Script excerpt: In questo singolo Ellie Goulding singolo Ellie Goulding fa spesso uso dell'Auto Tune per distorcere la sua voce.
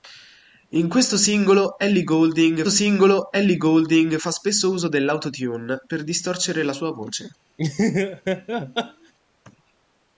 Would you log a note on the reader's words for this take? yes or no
no